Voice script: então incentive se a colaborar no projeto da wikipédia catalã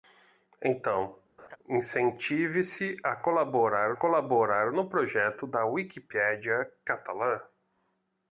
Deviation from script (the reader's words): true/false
true